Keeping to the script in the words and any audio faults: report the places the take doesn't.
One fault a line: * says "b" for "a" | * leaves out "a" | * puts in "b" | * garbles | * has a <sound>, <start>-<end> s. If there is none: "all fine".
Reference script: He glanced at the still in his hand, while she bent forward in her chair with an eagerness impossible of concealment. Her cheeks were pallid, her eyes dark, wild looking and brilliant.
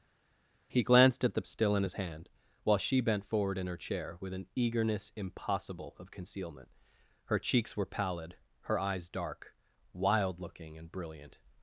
all fine